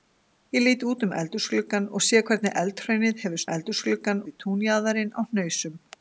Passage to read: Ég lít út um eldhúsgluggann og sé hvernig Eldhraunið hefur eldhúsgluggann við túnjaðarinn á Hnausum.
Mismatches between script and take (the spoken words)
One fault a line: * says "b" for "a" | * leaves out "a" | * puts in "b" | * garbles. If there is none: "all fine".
all fine